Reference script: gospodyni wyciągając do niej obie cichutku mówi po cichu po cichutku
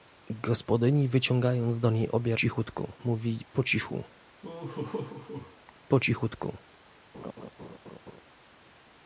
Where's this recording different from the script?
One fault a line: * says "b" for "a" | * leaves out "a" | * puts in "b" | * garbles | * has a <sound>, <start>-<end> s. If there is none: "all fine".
* has a laugh, 4.4-5.6 s
* has a laugh, 7.1-8.2 s